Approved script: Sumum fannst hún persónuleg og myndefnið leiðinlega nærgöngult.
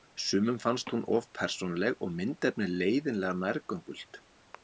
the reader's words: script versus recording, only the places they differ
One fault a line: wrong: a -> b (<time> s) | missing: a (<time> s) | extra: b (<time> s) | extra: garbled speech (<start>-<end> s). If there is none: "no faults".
extra: of (1.2 s)